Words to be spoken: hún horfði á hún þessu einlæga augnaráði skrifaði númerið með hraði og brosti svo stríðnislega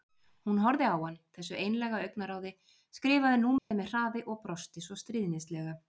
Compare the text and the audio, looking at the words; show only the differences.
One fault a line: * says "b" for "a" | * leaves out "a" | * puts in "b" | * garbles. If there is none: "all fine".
* says "hann" for "hún"